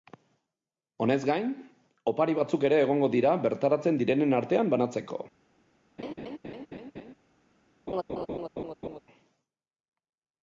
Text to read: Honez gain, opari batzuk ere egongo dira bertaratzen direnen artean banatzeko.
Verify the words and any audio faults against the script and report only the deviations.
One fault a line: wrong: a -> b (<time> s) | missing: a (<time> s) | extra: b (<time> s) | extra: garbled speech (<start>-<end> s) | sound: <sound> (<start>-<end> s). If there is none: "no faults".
sound: laugh (6.0-7.1 s)
sound: laugh (7.9-9.0 s)